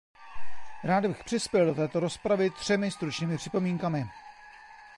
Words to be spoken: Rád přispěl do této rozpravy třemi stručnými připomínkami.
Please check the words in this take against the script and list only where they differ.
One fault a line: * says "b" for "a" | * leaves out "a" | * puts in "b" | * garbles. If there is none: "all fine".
* puts in "bych"